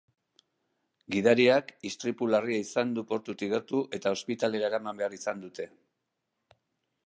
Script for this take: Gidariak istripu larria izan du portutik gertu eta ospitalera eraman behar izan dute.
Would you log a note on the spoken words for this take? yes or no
no